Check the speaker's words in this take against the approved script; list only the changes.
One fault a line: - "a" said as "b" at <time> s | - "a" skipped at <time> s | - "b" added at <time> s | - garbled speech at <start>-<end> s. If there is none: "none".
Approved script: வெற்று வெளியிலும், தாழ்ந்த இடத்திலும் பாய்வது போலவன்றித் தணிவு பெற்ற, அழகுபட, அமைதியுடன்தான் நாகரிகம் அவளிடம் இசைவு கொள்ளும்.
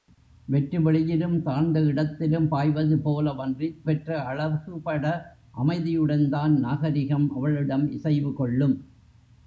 - "தணிவு" skipped at 3.8 s